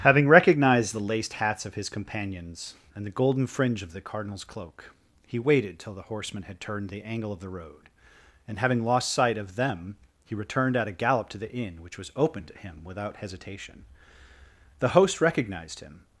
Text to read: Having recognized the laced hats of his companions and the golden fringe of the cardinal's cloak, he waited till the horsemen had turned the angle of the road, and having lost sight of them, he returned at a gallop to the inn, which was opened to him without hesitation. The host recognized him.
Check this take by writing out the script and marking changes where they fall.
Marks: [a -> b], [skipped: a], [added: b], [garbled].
Having recognized the laced hats of his companions and the golden fringe of the cardinal's cloak, he waited till the horsemen had turned the angle of the road, and having lost sight of them, he returned at a gallop to the inn, which was opened to him without hesitation. The host recognized him.